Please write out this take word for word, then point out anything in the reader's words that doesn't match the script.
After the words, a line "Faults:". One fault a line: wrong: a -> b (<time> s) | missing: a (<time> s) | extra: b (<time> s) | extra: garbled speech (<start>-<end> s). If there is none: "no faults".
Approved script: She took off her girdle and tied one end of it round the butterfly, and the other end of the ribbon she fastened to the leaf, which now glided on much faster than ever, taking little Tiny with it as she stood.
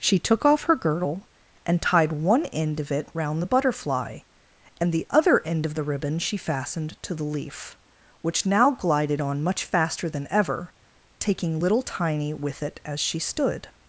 She took off her girdle and tied one end of it round the butterfly, and the other end of the ribbon she fastened to the leaf, which now glided on much faster than ever, taking little Tiny with it as she stood.
Faults:
no faults